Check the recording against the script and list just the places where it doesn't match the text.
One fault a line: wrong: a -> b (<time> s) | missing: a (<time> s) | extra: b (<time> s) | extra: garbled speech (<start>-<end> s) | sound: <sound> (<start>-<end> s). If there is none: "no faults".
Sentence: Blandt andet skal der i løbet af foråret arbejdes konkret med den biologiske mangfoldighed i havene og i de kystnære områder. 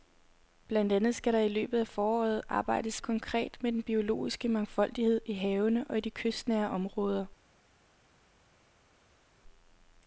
no faults